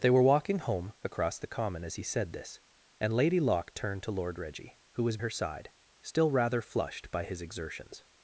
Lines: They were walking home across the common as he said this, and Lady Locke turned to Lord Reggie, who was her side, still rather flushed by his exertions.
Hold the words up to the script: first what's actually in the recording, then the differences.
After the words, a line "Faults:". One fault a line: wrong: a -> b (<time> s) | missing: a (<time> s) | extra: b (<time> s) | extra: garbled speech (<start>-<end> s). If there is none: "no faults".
They were walking home across the common as he said this, and Lady Locke turned to Lord Reggie, who was her side, still rather flushed by his exertions.
Faults:
no faults